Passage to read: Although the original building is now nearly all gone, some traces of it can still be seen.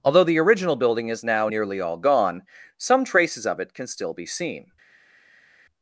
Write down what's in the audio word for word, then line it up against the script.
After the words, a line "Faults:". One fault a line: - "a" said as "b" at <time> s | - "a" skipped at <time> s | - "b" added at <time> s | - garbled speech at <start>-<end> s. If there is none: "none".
Although the original building is now nearly all gone, some traces of it can still be seen.
Faults:
none